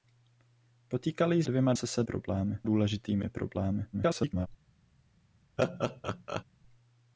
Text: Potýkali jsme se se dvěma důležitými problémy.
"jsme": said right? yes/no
no